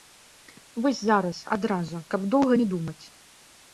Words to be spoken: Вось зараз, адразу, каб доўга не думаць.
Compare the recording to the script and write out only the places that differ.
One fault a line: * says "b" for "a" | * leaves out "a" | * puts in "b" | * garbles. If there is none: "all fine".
all fine